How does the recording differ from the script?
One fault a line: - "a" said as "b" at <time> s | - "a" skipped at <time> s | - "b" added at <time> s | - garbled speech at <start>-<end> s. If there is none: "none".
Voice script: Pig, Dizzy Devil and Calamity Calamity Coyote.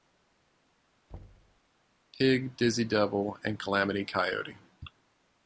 - "Calamity" skipped at 4.0 s